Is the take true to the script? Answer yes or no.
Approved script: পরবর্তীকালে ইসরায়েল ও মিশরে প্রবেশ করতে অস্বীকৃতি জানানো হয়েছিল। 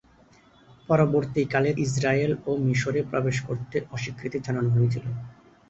yes